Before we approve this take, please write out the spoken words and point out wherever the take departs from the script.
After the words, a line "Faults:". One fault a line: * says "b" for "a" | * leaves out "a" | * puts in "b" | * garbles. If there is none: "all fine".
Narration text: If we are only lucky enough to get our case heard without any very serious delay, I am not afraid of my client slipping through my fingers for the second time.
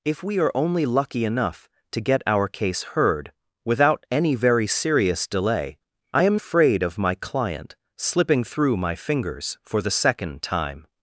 If we are only lucky enough to get our case heard without any very serious delay, I am afraid of my client slipping through my fingers for the second time.
Faults:
* leaves out "not"